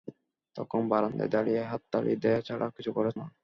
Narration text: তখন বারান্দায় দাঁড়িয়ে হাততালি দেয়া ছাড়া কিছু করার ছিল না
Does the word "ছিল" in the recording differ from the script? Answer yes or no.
yes